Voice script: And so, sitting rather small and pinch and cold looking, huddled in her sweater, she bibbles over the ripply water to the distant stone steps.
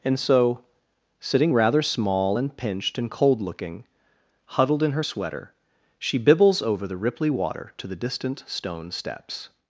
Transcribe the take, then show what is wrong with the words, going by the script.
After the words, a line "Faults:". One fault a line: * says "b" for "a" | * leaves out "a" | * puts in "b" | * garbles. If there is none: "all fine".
And so, sitting rather small and pinched and cold looking, huddled in her sweater, she bibbles over the ripply water to the distant stone steps.
Faults:
* says "pinched" for "pinch"